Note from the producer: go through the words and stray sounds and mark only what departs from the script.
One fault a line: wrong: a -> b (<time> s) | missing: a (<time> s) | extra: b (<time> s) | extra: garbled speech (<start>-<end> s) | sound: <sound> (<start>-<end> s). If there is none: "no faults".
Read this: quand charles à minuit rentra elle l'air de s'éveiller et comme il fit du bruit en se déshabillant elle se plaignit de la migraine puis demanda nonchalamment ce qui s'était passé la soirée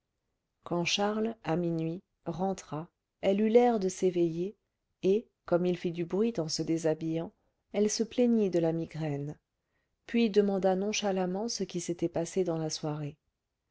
extra: eut (3.4 s)
extra: dans (12.4 s)